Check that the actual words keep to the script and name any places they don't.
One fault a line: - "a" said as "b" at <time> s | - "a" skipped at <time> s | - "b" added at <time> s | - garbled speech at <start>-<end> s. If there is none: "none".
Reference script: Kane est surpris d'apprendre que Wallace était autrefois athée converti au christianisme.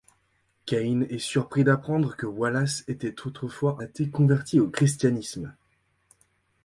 none